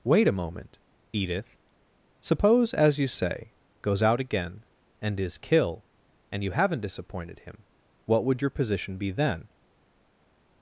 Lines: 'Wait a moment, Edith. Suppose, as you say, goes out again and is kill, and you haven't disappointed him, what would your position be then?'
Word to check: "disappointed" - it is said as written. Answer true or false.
true